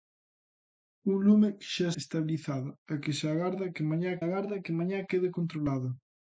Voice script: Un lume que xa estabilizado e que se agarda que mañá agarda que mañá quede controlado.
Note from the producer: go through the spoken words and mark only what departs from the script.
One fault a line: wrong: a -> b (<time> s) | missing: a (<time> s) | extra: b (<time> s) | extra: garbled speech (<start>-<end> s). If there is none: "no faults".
no faults